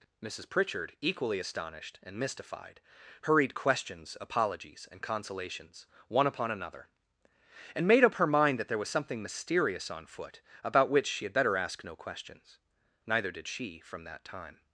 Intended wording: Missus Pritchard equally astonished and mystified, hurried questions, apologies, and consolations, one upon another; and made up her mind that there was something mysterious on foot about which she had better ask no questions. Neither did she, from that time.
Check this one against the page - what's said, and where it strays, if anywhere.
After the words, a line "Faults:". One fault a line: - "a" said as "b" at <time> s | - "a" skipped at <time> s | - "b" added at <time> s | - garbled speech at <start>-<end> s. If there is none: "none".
Missus Pritchard equally astonished and mystified, hurried questions, apologies, and consolations, one upon another; and made up her mind that there was something mysterious on foot about which she had better ask no questions. Neither did she, from that time.
Faults:
none